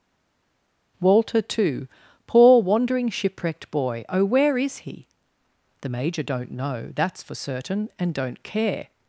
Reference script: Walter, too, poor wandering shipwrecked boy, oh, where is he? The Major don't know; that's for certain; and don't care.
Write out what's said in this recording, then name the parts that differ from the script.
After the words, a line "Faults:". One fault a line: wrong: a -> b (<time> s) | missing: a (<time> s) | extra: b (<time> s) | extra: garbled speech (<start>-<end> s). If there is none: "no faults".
Walter, too, poor wandering shipwrecked boy, oh, where is he? The Major don't know; that's for certain; and don't care.
Faults:
no faults